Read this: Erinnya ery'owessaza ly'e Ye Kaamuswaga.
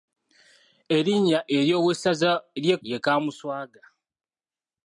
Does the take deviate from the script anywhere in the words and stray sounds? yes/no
no